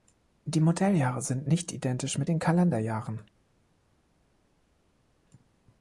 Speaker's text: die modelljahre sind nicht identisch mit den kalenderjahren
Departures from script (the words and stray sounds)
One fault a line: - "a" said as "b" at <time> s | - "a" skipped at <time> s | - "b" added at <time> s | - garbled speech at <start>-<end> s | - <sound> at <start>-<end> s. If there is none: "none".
none